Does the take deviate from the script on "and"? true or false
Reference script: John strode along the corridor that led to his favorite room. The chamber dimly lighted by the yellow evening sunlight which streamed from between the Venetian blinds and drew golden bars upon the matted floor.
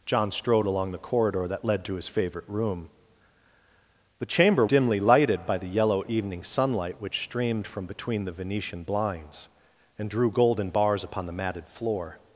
false